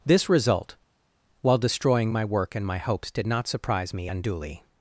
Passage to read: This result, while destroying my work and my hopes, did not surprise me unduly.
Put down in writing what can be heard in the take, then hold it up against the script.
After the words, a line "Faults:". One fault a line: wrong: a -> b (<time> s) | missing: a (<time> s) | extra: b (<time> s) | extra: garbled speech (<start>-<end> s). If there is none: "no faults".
This result, while destroying my work and my hopes, did not surprise me unduly.
Faults:
no faults